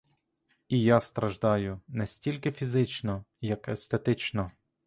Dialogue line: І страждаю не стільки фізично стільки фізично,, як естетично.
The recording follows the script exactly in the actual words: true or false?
false